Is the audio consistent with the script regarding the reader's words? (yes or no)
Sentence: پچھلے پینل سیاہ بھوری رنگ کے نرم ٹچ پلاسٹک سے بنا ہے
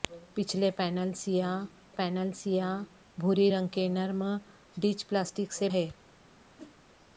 no